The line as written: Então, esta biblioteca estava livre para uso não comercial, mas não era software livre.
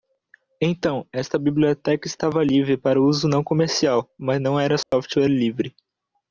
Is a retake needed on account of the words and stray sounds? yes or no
yes